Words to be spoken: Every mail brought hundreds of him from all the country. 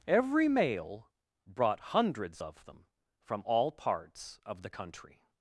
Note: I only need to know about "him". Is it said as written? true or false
false